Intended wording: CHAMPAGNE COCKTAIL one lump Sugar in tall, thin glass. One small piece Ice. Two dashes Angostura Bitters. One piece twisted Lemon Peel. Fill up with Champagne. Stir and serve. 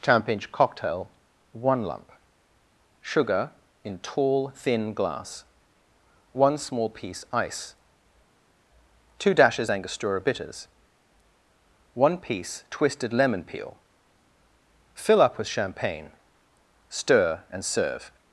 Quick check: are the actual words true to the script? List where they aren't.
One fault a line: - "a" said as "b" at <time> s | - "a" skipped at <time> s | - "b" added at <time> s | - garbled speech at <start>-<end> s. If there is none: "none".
none